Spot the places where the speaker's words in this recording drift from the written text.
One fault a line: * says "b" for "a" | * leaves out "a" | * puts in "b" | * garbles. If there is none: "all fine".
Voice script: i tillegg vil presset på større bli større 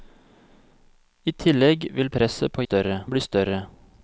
all fine